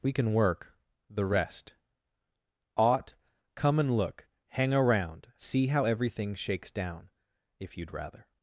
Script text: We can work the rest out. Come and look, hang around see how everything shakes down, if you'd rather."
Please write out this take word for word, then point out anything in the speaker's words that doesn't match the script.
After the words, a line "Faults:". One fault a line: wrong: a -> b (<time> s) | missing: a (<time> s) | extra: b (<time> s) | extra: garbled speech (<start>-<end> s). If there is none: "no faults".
We can work the rest ought. Come and look, hang around see how everything shakes down, if you'd rather."
Faults:
wrong: out -> ought (2.8 s)